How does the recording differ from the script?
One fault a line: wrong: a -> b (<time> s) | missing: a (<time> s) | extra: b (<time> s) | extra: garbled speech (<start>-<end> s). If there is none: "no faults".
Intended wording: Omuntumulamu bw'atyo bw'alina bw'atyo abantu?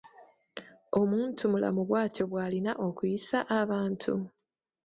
wrong: bw'atyo -> okuyisa (2.9 s)